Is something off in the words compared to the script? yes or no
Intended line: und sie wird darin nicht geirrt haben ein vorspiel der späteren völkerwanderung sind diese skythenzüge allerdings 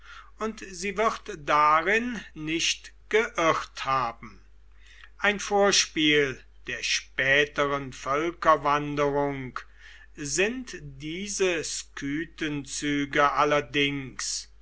no